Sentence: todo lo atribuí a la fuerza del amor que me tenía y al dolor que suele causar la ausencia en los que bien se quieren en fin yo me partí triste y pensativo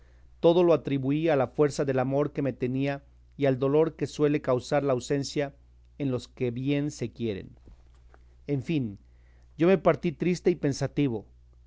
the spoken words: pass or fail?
pass